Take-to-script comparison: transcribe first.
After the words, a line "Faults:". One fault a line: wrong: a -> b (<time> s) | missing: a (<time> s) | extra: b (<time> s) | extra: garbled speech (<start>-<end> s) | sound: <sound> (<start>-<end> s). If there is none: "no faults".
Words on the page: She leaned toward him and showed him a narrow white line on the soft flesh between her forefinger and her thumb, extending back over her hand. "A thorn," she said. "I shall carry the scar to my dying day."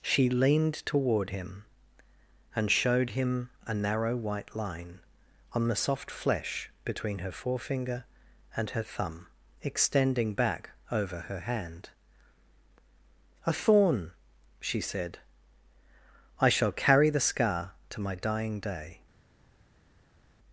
She leaned toward him and showed him a narrow white line on the soft flesh between her forefinger and her thumb, extending back over her hand. "A thorn," she said. "I shall carry the scar to my dying day."
Faults:
no faults